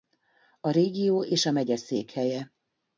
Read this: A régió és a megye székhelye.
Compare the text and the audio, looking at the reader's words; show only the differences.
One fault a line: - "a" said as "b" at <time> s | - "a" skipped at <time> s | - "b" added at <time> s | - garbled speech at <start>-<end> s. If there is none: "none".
none